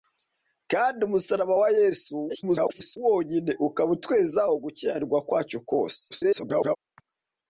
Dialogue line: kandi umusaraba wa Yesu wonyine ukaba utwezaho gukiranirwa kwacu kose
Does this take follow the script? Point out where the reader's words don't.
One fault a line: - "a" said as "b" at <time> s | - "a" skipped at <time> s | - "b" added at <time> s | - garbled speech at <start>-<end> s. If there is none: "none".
- garbled speech at 2.3-3.0 s
- garbled speech at 6.1-6.8 s